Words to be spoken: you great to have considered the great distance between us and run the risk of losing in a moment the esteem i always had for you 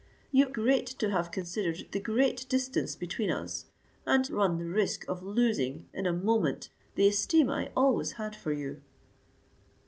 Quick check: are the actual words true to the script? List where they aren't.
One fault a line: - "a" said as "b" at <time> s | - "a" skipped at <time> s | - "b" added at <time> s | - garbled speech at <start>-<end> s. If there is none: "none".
none